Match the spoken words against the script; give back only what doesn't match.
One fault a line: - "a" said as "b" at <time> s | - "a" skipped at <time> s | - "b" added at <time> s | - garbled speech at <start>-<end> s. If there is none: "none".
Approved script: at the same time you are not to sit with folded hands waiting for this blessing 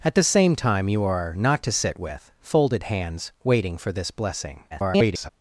- garbled speech at 4.7-5.3 s